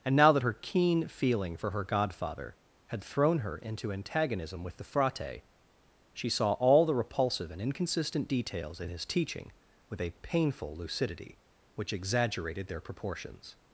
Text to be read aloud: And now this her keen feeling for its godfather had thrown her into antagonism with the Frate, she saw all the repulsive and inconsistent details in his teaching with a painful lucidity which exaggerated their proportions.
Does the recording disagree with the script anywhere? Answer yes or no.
yes